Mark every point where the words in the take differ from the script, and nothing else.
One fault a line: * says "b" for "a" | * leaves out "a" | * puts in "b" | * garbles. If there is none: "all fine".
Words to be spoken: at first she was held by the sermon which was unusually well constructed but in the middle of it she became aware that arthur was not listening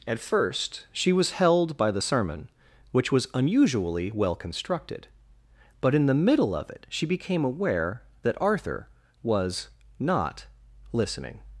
all fine